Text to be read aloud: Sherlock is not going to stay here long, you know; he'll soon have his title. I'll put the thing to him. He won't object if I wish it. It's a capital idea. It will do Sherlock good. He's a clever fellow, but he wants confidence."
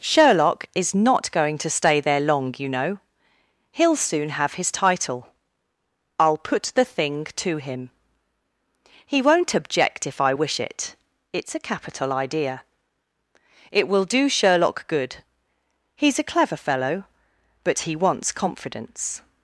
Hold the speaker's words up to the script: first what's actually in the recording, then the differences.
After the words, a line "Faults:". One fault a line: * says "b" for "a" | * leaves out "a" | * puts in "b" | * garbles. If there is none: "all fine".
Sherlock is not going to stay there long, you know; he'll soon have his title. I'll put the thing to him. He won't object if I wish it. It's a capital idea. It will do Sherlock good. He's a clever fellow, but he wants confidence."
Faults:
* says "there" for "here"